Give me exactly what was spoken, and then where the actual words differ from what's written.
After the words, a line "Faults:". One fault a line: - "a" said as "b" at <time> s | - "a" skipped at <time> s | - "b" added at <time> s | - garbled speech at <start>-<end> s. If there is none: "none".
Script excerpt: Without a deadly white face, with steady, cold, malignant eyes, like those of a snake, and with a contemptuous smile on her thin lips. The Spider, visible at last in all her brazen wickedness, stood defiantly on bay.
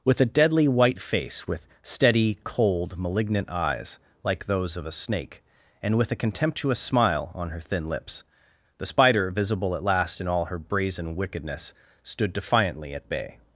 With a deadly white face, with steady, cold, malignant eyes, like those of a snake, and with a contemptuous smile on her thin lips. The Spider, visible at last in all her brazen wickedness, stood defiantly at bay.
Faults:
- "Without" said as "With" at 0.0 s
- "on" said as "at" at 12.9 s